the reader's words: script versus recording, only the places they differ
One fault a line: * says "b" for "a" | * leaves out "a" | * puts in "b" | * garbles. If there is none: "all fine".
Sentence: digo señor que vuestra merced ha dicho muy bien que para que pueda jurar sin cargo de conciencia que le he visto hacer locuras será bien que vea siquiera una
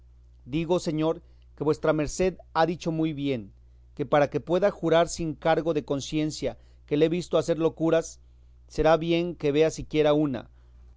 all fine